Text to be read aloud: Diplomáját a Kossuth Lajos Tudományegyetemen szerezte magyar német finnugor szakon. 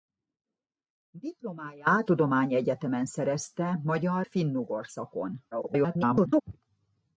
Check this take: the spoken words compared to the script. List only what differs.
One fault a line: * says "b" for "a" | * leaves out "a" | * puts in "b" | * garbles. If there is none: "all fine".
* leaves out "a Kossuth Lajos"
* leaves out "német"
* garbles